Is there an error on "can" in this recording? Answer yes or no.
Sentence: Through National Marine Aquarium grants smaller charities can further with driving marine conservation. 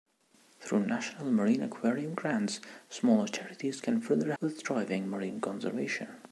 no